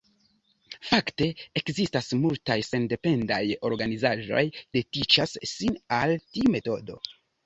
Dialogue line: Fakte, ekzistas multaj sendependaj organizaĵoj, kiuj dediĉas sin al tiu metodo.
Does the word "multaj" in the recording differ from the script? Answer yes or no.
no